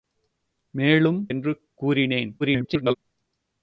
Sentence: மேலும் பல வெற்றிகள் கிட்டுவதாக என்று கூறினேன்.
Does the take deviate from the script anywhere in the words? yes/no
yes